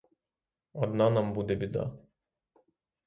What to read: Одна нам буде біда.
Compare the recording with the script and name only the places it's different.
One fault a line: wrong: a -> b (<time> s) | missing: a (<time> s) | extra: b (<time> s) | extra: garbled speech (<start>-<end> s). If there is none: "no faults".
no faults